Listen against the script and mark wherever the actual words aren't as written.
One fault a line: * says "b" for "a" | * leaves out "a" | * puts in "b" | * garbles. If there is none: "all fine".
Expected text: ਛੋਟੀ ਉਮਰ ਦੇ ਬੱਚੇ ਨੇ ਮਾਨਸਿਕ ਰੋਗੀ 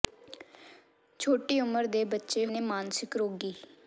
all fine